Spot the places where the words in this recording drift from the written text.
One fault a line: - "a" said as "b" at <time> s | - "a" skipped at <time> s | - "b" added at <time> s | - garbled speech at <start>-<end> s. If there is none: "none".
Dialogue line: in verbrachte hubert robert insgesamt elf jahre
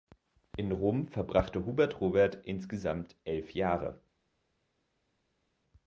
- "rom" added at 0.7 s